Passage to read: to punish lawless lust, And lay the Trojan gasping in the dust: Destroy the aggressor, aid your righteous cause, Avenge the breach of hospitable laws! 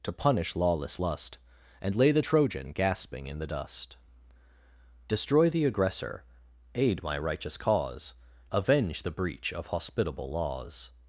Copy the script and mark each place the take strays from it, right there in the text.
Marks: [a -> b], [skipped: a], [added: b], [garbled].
to punish lawless lust, And lay the Trojan gasping in the dust: Destroy the aggressor, aid [your -> my] righteous cause, Avenge the breach of hospitable laws!